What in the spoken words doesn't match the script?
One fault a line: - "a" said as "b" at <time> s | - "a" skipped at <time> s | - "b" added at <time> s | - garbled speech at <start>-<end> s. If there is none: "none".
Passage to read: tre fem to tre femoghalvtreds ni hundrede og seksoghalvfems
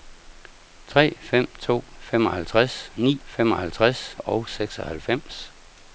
- "tre" skipped at 1.8 s
- "hundrede" said as "femoghalvtreds" at 3.3 s